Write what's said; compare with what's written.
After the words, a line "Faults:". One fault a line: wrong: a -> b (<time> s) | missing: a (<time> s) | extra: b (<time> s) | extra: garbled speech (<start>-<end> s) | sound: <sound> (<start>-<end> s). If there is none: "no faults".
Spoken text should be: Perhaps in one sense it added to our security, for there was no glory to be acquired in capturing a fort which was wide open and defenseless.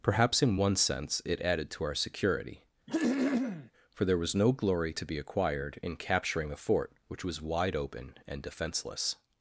Perhaps in one sense it added to our security, for there was no glory to be acquired in capturing a fort which was wide open and defenseless.
Faults:
sound: throat clearing (2.9-3.7 s)